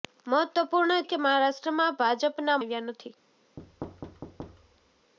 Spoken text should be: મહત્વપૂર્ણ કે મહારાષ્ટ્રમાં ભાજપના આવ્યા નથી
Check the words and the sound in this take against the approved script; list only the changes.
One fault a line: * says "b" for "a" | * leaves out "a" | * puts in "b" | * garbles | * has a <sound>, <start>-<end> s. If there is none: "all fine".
* has a thud, 3.6-5.1 s